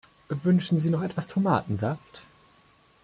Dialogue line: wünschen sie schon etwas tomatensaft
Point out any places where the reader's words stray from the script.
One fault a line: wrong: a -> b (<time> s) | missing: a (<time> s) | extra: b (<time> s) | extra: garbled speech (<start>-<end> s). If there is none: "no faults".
wrong: schon -> noch (0.9 s)